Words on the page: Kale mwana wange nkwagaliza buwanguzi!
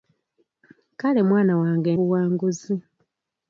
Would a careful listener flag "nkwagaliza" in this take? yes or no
yes